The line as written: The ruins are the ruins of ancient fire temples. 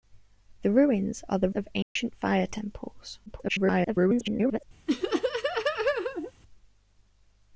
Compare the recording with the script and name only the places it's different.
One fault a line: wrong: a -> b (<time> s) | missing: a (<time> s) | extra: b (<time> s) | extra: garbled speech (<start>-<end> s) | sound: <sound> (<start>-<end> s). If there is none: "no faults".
missing: ruins (1.5 s)
sound: dropout (1.8-2.0 s)
extra: garbled speech (3.3-4.6 s)
sound: laugh (4.9-6.3 s)